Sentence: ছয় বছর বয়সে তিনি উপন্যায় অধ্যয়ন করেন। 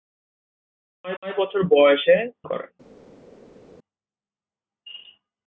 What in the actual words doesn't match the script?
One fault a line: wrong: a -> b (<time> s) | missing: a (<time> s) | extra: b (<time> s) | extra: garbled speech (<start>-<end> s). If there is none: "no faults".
extra: ছয় (1.2 s)
missing: তিনি উপন্যায় অধ্যয়ন (2.2 s)